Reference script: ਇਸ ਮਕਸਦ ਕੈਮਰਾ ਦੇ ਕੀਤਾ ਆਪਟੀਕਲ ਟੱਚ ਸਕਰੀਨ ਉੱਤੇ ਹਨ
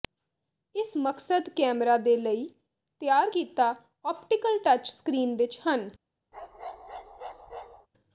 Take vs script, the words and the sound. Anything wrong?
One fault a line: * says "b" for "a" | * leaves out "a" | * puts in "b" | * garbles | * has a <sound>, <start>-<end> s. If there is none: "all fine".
* puts in "ਲਈ ਤਿਆਰ"
* says "ਵਿੱਚ" for "ਉੱਤੇ"
* has a bark, 6.3-7.9 s